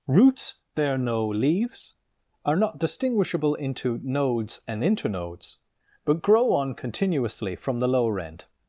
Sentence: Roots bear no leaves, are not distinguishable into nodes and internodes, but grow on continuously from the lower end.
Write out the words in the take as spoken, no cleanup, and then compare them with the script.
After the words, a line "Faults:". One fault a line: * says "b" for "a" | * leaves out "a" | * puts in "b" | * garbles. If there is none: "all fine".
Roots bear no leaves, are not distinguishable into nodes and internodes, but grow on continuously from the lower end.
Faults:
all fine